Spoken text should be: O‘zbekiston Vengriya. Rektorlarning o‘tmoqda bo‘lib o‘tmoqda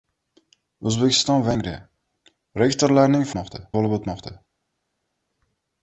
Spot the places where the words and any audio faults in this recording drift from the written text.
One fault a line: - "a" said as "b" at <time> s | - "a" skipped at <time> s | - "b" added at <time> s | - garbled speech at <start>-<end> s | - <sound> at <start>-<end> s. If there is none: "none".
none